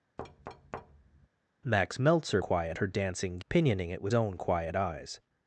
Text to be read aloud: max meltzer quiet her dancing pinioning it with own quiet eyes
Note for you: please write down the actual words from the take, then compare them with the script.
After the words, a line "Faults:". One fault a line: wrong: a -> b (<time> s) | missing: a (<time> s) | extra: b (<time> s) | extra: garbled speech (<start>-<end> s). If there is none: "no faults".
max meltzer quiet her dancing pinioning it with own quiet eyes
Faults:
no faults